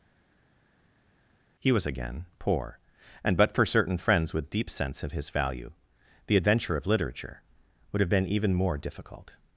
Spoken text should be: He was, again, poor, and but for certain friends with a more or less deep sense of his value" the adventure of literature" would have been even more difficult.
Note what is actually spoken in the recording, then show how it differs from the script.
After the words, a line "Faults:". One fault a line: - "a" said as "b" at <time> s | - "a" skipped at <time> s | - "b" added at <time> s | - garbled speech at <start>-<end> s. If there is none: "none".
He was, again, poor, and but for certain friends with deep sense of his value" the adventure of literature" would have been even more difficult.
Faults:
- "a more or less" skipped at 4.5 s